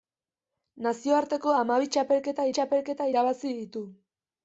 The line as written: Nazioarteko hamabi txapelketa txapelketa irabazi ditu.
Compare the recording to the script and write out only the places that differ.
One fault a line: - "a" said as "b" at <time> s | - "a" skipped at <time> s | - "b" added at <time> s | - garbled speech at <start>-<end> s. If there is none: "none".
none